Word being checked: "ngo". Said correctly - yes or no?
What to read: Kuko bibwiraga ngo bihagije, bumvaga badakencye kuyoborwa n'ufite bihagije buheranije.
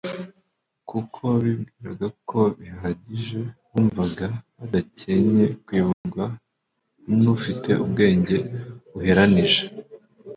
no